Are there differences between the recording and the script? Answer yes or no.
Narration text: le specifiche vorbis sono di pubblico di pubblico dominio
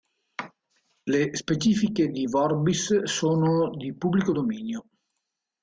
yes